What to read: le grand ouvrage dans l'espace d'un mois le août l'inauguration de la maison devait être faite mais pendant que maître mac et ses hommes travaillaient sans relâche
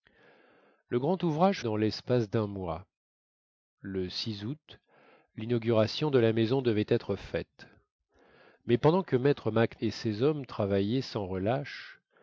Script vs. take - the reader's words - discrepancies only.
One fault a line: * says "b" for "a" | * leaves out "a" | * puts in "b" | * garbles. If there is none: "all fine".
all fine